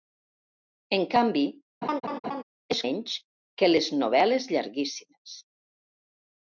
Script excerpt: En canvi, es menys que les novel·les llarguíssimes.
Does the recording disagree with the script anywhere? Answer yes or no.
no